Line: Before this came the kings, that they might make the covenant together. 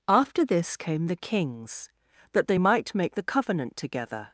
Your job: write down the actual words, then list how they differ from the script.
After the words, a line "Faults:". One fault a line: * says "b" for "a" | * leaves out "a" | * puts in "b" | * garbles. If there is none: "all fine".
After this came the kings, that they might make the covenant together.
Faults:
* says "After" for "Before"